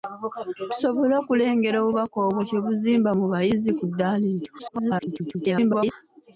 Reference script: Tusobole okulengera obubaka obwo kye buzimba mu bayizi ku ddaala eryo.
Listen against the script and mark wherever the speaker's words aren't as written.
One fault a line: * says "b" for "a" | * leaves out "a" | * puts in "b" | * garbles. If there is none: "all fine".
* garbles